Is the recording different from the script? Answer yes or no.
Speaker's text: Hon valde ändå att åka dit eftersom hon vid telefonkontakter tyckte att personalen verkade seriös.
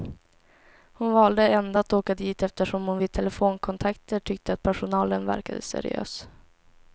no